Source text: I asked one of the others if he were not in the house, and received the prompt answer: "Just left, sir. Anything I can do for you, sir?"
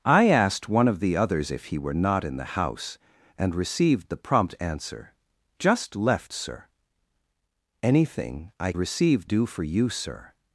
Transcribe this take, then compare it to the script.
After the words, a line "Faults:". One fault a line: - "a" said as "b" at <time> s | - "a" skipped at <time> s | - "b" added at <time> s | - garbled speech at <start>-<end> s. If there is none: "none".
I asked one of the others if he were not in the house, and received the prompt answer: "Just left, sir. Anything I received do for you, sir?"
Faults:
- "can" said as "received" at 8.7 s